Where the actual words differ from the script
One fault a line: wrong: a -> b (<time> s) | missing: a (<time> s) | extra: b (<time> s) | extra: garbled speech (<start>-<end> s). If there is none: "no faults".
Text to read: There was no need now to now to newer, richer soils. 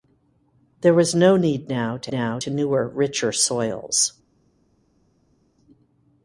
no faults